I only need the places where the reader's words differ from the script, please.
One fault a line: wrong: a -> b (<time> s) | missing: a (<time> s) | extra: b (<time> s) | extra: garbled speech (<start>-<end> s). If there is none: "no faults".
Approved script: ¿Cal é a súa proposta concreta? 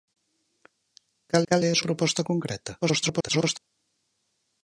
extra: cal (1.5 s)
missing: súa (1.8 s)
extra: garbled speech (2.8-3.6 s)